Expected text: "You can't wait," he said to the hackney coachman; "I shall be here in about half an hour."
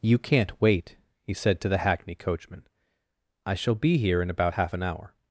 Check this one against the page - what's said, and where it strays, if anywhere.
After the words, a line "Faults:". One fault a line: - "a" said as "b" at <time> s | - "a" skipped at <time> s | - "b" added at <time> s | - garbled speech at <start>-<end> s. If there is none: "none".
"You can't wait," he said to the hackney coachman; "I shall be here in about half an hour."
Faults:
none